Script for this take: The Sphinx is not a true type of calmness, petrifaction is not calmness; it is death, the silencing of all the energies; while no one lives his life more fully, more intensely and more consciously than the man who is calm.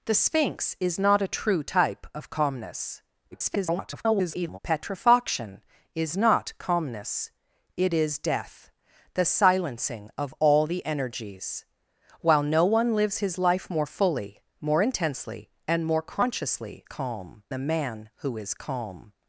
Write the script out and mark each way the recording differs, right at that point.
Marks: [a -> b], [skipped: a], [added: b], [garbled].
The Sphinx is not a true type of calmness, [garbled] petrifaction is not calmness; it is death, the silencing of all the energies; while no one lives his life more fully, more intensely and more consciously [than -> calm] the man who is calm.